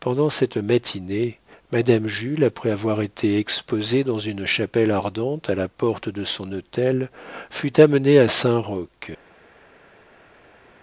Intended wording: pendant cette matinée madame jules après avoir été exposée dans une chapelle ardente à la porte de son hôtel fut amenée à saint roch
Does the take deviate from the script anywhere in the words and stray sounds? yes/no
no